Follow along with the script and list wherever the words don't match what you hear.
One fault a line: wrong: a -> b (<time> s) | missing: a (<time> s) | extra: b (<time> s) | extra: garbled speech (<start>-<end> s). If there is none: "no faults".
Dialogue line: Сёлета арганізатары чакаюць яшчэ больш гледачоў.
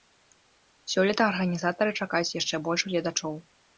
no faults